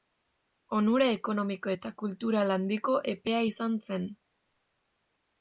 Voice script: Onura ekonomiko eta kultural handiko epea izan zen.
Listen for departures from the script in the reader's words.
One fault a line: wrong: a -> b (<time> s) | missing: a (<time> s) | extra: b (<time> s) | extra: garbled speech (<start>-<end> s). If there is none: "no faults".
no faults